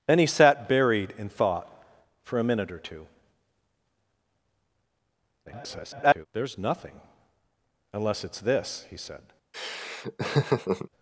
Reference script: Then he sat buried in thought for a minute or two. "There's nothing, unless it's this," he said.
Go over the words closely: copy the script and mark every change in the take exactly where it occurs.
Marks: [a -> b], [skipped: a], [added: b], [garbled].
Then he sat buried in thought for a minute or two. [garbled] "There's nothing, unless it's this," he said.